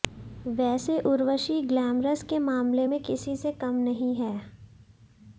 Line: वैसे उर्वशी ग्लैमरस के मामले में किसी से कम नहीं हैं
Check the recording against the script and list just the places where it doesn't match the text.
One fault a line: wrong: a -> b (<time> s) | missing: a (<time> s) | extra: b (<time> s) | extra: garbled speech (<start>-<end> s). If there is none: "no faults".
no faults